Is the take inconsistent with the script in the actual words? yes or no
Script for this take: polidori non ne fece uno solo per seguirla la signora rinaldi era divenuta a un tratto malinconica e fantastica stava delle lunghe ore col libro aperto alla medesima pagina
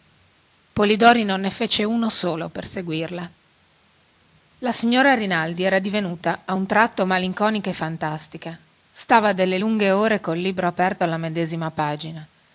no